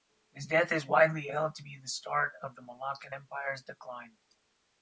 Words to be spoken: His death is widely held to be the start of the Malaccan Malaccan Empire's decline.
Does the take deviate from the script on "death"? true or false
false